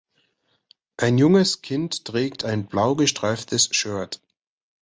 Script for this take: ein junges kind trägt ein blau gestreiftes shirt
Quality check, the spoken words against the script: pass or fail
pass